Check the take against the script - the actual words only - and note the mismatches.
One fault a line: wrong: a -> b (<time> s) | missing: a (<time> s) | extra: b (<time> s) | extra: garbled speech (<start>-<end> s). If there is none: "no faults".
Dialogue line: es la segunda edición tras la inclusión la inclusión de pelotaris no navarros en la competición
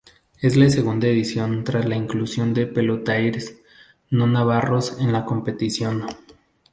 missing: la inclusión (2.5 s)